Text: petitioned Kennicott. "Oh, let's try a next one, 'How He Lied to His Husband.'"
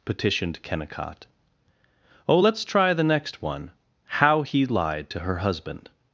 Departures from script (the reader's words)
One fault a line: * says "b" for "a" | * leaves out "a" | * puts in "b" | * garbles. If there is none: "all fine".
* says "the" for "a"
* says "Her" for "His"